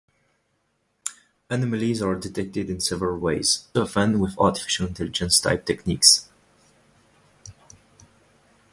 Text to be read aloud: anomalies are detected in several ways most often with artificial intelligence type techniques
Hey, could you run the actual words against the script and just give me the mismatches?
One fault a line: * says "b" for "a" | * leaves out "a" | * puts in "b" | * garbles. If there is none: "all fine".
* leaves out "most"